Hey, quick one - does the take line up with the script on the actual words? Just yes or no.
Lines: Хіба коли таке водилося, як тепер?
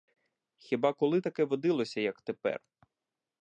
yes